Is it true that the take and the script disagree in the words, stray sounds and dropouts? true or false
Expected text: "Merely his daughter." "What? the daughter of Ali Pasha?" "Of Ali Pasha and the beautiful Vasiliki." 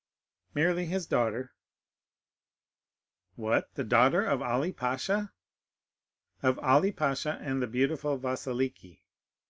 false